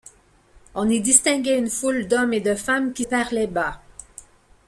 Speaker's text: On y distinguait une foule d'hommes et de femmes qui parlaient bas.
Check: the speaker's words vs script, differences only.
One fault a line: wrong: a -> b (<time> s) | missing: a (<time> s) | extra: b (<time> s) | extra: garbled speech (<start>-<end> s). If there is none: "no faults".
no faults